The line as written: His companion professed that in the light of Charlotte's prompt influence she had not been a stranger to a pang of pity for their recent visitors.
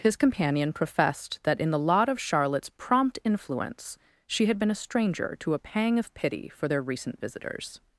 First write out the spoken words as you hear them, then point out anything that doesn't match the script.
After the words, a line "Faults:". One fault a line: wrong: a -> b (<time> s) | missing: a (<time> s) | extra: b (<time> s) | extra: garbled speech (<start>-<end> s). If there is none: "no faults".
His companion professed that in the lot of Charlotte's prompt influence she had been a stranger to a pang of pity for their recent visitors.
Faults:
wrong: light -> lot (1.8 s)
missing: not (4.6 s)